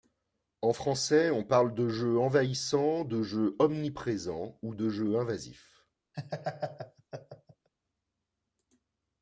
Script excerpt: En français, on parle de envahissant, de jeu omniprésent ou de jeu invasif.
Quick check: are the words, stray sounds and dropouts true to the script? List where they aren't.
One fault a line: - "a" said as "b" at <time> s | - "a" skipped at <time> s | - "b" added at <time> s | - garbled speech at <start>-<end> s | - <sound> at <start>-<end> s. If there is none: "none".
- "jeu" added at 1.9 s
- laugh at 6.1-7.7 s